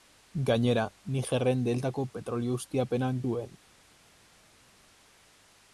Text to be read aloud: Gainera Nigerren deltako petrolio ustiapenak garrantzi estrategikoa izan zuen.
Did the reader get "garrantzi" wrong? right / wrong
wrong